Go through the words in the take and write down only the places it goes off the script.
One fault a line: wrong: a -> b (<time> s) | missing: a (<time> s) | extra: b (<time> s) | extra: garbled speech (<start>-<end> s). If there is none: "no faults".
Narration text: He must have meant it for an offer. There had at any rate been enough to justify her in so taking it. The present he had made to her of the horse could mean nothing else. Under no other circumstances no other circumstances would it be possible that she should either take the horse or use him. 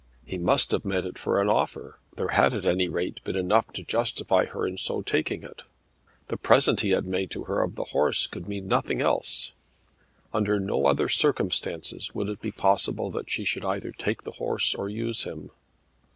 missing: no other circumstances (12.1 s)